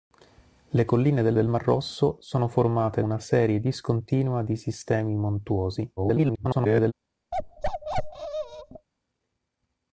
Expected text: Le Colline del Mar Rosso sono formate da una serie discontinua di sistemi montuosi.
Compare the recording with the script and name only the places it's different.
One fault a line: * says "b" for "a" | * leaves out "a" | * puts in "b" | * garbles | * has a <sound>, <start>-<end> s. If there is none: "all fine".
* puts in "del"
* leaves out "da"
* garbles
* has a bark, 7.3-8.9 s